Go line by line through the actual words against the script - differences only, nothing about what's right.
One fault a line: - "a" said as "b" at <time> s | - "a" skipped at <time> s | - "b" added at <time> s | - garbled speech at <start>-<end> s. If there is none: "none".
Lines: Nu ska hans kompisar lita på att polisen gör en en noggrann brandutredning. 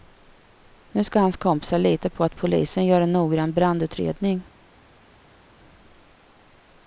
- "en" skipped at 3.1 s